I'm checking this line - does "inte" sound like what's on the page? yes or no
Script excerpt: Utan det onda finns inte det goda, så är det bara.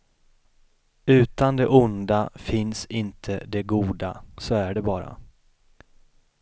yes